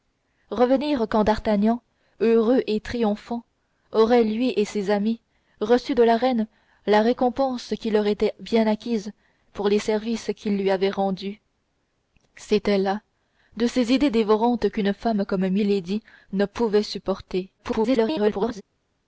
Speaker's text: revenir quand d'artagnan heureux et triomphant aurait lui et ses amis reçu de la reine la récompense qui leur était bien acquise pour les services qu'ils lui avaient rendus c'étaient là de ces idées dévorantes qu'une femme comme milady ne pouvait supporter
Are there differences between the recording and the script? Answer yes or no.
yes